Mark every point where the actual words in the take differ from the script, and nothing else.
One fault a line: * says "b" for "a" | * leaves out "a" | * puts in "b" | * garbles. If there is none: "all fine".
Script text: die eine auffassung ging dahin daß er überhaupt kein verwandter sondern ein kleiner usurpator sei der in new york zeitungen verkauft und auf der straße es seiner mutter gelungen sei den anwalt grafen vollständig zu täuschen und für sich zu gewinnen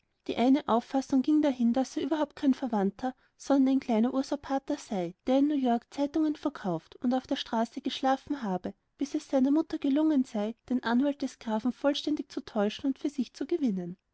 * puts in "geschlafen habe bis"
* puts in "des"